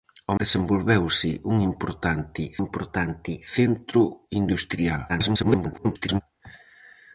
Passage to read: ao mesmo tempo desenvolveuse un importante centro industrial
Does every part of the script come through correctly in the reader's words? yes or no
no